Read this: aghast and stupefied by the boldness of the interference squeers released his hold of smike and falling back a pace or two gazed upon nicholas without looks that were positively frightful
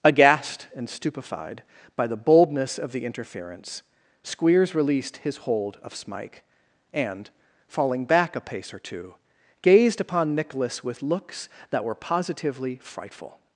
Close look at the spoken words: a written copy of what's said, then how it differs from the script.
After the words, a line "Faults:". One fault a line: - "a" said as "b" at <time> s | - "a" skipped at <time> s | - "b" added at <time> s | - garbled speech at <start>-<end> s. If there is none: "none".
aghast and stupefied by the boldness of the interference squeers released his hold of smike and falling back a pace or two gazed upon nicholas with looks that were positively frightful
Faults:
- "without" said as "with" at 10.8 s